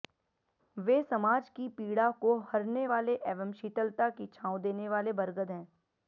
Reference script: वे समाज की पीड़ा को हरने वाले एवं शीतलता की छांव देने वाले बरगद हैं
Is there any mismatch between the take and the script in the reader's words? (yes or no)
no